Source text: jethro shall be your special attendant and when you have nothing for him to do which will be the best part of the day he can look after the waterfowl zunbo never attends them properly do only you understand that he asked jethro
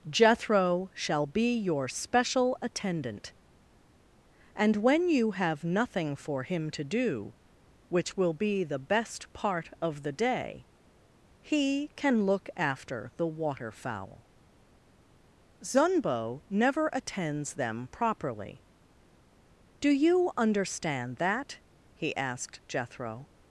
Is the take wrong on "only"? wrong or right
wrong